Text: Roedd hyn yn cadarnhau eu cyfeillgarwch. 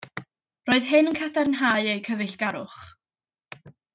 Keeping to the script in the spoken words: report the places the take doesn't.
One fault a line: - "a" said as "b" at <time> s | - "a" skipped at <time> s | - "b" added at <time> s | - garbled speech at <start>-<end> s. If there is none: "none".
none